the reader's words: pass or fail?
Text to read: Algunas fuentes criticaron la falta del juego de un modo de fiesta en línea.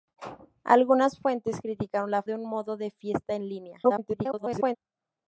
fail